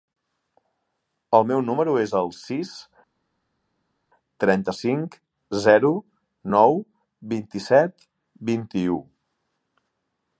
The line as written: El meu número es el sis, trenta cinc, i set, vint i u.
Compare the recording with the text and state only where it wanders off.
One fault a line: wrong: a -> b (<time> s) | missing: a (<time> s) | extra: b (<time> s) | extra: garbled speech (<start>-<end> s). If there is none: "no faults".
extra: zero nou vint (5.7 s)